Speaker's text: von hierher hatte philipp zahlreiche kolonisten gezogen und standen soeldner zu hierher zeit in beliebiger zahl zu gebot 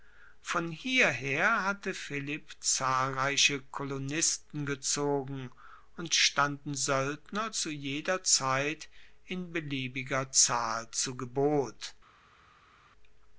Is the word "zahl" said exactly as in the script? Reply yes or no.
yes